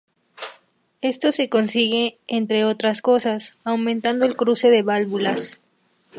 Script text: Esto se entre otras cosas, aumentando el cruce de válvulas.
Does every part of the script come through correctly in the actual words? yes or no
no